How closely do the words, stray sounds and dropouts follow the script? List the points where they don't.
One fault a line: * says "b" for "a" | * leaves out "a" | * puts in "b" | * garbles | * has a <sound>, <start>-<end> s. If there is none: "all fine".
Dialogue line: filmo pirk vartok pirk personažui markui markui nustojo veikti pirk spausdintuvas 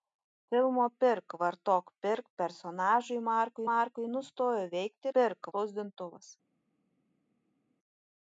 all fine